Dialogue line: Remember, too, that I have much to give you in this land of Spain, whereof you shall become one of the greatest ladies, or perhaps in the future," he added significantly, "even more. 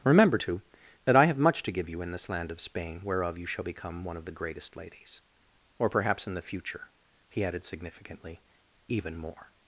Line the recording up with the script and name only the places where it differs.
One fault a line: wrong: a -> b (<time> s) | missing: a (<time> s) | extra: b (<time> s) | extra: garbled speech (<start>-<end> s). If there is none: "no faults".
no faults